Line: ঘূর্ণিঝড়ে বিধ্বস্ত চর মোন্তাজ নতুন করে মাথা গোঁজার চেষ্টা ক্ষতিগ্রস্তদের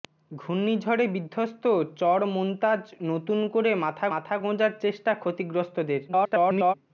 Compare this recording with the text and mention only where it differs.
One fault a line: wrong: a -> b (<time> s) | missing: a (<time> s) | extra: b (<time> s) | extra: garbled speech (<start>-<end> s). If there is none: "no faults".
extra: মাথা (4.1 s)
extra: garbled speech (6.1-6.7 s)